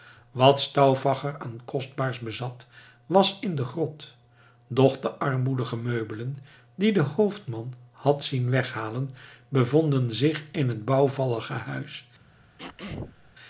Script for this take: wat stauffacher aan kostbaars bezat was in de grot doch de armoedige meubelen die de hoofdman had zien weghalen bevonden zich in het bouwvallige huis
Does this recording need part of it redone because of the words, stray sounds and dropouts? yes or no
yes